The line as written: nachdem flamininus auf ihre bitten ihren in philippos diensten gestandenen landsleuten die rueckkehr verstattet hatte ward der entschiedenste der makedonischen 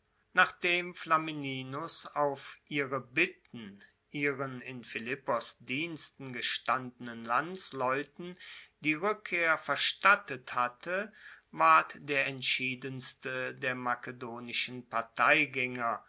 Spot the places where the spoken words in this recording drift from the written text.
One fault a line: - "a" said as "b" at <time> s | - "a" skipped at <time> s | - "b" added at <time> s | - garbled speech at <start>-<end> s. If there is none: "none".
none